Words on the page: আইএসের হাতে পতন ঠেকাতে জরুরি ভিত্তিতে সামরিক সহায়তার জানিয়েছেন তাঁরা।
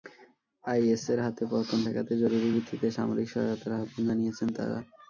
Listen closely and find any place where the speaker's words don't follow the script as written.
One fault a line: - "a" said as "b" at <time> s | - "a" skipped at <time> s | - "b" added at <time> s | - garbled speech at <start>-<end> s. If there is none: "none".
- "আহ্বান" added at 3.8 s